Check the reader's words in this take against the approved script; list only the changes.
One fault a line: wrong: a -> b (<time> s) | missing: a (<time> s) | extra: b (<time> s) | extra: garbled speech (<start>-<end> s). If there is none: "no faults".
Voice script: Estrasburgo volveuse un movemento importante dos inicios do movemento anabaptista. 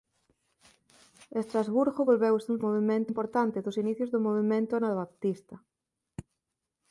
no faults